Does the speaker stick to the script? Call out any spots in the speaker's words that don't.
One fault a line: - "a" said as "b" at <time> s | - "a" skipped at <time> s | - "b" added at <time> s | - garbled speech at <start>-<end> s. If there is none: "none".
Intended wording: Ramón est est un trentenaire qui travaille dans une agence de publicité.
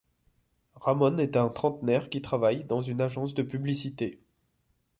- "est" skipped at 1.4 s